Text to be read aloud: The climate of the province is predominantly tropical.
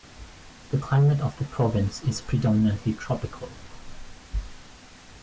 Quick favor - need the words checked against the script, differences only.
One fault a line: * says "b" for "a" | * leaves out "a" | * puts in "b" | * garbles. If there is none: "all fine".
all fine